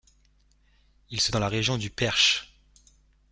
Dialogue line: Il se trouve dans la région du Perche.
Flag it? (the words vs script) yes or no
yes